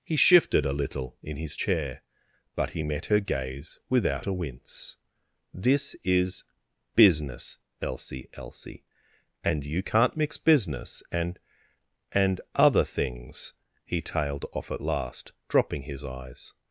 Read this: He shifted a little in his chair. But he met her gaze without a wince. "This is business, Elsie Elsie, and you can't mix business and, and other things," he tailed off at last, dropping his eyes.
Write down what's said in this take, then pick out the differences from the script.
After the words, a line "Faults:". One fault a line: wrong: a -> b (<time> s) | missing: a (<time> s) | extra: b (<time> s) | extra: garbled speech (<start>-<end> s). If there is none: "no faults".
He shifted a little in his chair. But he met her gaze without a wince. "This is business, Elsie Elsie, and you can't mix business and, and other things," he tailed off at last, dropping his eyes.
Faults:
no faults